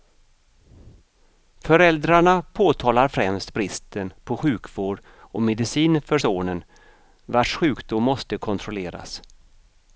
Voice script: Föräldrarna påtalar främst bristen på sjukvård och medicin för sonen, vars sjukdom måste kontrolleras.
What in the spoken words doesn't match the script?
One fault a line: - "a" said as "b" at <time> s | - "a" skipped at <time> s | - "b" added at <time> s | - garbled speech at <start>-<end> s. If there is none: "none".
none